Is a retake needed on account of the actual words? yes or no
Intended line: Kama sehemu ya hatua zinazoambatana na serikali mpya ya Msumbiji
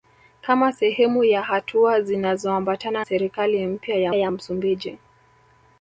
yes